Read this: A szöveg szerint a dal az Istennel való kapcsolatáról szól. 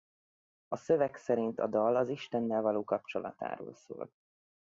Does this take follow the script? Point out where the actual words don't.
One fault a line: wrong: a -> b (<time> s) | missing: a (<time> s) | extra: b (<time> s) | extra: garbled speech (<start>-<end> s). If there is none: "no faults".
no faults